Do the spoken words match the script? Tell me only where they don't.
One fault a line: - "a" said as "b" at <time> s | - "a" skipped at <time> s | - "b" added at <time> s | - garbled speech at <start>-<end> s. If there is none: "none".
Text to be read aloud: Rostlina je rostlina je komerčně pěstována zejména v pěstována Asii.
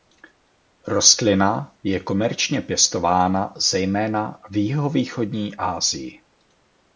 - "rostlina je" skipped at 2.0 s
- "pěstována" said as "jihovýchodní" at 4.6 s